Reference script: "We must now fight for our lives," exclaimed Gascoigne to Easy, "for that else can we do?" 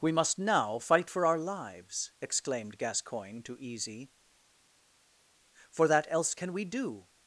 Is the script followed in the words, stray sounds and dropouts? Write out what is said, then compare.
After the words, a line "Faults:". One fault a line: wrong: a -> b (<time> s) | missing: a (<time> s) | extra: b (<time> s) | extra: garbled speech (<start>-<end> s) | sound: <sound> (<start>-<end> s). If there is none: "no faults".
"We must now fight for our lives," exclaimed Gascoigne to Easy, "for that else can we do?"
Faults:
no faults